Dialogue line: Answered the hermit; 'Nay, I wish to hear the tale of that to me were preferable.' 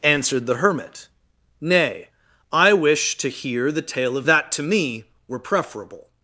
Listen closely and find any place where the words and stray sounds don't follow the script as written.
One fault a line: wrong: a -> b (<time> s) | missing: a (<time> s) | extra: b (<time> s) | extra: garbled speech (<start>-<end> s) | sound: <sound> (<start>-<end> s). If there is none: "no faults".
no faults